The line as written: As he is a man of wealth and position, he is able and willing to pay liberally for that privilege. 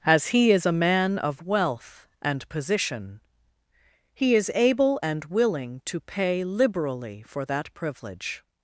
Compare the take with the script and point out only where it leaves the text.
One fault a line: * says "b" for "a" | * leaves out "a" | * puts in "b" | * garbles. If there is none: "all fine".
all fine